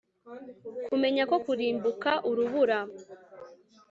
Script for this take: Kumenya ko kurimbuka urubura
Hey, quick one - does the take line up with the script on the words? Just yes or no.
yes